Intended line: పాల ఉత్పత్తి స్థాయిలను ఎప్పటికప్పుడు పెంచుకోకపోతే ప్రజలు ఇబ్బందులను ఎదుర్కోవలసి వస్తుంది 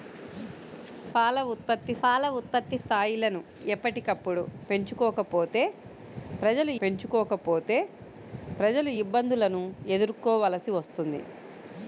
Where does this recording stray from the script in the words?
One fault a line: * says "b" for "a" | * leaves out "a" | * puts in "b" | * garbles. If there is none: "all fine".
* puts in "పాల ఉత్పత్తి"
* puts in "పెంచుకోకపోతే ప్రజలు"